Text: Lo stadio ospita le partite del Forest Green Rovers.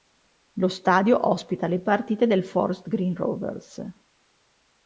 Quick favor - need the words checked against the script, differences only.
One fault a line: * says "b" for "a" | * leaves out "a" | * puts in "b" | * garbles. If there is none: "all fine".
all fine